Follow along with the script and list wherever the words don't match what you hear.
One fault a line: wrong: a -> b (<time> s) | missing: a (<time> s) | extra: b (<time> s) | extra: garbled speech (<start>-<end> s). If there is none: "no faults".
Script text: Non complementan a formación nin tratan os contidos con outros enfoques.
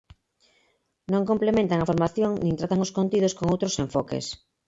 no faults